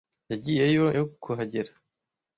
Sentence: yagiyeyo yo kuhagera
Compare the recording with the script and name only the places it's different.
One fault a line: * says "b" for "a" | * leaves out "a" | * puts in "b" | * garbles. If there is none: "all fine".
all fine